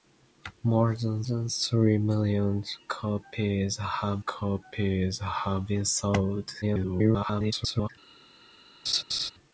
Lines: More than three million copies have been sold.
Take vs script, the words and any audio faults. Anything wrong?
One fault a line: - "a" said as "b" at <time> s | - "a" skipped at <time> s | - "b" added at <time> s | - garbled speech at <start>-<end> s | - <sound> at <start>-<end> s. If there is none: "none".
- "than" added at 1.2 s
- "copies have" added at 4.2 s
- garbled speech at 6.6-7.9 s
- laugh at 8.9-9.3 s